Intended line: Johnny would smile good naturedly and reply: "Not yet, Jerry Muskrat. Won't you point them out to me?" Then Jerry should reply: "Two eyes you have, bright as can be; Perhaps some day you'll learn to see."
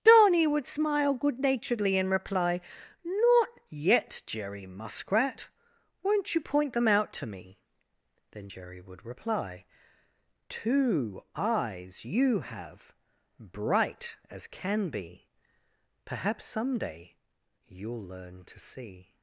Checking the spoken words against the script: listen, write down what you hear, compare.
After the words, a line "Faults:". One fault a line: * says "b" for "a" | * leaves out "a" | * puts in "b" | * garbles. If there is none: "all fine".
Johnny would smile good naturedly and reply: "Not yet, Jerry Muskrat. Won't you point them out to me?" Then Jerry would reply: "Two eyes you have, bright as can be; Perhaps some day you'll learn to see."
Faults:
* says "would" for "should"